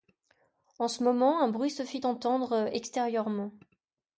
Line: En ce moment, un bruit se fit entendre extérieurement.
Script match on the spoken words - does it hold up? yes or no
yes